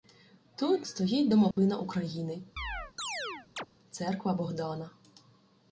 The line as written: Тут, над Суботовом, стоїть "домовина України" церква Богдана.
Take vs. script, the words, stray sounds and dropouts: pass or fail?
fail